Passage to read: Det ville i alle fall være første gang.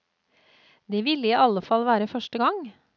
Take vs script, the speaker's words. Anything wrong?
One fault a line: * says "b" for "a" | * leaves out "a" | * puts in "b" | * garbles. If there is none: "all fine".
all fine